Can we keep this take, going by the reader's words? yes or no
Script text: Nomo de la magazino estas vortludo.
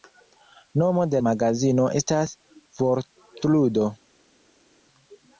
no